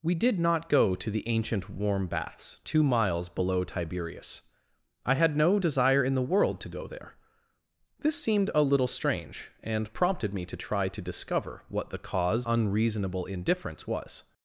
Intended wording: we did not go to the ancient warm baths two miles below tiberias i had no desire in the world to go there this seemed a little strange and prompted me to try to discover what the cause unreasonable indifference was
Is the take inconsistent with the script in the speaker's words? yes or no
no